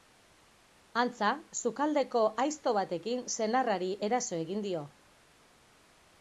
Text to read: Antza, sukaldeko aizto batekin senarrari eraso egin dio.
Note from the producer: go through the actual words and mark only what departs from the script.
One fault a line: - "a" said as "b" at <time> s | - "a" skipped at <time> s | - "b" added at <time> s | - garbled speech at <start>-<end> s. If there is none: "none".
none